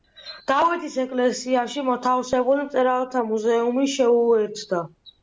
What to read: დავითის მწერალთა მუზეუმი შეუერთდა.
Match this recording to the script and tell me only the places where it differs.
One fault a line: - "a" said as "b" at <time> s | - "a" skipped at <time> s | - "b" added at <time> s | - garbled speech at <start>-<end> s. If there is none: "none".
- "ეკლესიაში მოთავსებული" added at 1.0 s